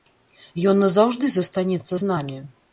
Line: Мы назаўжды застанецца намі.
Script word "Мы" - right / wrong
wrong